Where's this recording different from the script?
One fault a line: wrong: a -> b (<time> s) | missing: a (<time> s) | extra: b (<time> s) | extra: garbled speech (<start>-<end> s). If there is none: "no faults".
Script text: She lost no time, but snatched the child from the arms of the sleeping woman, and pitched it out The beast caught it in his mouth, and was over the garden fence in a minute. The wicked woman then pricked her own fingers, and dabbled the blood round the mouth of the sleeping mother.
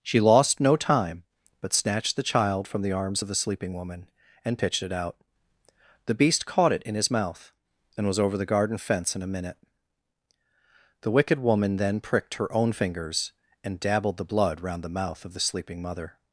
no faults